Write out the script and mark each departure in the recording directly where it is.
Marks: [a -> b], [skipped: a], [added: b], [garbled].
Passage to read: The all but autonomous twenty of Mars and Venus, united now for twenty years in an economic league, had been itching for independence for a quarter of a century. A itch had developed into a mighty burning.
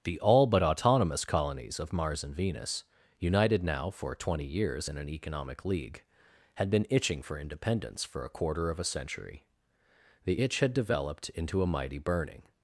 The all but autonomous [twenty -> colonies] of Mars and Venus, united now for twenty years in an economic league, had been itching for independence for a quarter of a century. [A -> The] itch had developed into a mighty burning.